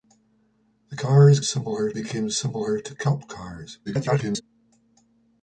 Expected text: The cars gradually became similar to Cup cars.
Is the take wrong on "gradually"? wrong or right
wrong